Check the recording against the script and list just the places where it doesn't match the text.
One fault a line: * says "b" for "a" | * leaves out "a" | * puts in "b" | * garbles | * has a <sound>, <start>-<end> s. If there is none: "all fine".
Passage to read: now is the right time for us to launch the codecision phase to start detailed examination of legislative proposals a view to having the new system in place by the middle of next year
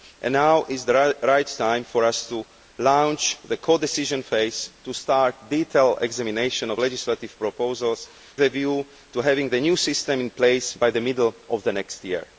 all fine